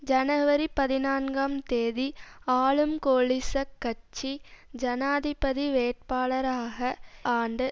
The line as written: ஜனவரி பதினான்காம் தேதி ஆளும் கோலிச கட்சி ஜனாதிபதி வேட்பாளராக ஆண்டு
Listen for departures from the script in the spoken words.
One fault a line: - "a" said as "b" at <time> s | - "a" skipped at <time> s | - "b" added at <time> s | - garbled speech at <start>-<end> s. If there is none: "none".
none